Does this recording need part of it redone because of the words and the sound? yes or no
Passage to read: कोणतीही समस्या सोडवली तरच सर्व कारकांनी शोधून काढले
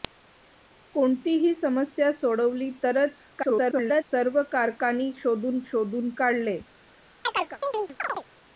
yes